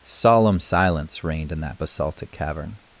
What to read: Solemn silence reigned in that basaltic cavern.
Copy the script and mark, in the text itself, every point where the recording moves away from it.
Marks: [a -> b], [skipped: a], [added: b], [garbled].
Solemn silence reigned in that basaltic cavern.